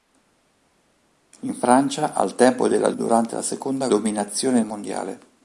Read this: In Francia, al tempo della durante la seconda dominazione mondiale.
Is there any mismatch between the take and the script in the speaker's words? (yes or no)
no